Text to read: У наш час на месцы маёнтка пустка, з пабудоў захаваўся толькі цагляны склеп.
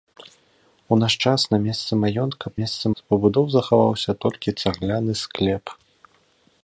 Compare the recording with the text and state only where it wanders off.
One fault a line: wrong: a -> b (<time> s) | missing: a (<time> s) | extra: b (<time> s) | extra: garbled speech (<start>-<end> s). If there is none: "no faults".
wrong: пустка -> месцы (2.6 s)